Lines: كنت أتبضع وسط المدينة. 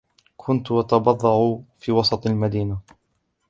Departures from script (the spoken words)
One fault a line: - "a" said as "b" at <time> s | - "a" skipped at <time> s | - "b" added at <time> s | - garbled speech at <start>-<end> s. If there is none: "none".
- "في" added at 1.8 s